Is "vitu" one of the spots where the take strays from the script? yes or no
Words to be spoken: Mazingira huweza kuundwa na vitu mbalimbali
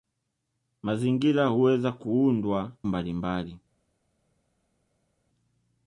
yes